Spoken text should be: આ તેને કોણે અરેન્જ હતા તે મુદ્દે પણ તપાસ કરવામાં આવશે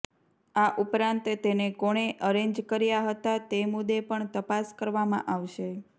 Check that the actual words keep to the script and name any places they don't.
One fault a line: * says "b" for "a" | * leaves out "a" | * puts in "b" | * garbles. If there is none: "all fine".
* puts in "ઉપરાંત"
* puts in "કર્યા"